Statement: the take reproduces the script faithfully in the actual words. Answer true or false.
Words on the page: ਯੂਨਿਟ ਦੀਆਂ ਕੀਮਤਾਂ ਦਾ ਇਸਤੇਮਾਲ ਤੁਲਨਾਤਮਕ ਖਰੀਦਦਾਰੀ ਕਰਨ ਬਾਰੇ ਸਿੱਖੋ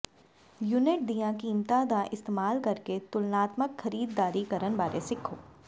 false